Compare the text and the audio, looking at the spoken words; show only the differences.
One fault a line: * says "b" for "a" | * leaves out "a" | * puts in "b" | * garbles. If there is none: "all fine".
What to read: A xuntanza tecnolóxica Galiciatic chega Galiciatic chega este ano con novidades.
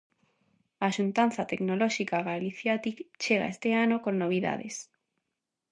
* leaves out "Galiciatic chega"